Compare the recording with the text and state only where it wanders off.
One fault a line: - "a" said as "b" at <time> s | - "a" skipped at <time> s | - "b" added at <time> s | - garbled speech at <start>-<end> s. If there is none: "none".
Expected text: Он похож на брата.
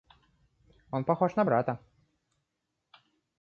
none